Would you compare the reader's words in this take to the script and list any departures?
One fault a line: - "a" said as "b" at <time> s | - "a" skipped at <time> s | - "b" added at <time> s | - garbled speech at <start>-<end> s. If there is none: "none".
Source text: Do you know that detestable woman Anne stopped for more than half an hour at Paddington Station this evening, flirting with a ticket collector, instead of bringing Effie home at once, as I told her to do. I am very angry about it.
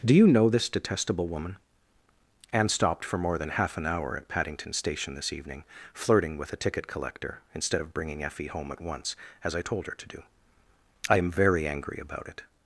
- "that" said as "this" at 0.5 s